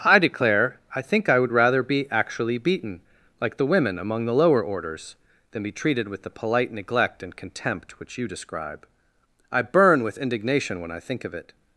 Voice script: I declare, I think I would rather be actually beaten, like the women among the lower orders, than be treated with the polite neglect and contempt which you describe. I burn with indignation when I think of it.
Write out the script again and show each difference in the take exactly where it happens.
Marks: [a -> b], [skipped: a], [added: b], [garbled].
I declare, I think I would rather be actually beaten, like the women among the lower orders, than be treated with the polite neglect and contempt which you describe. I burn with indignation when I think of it.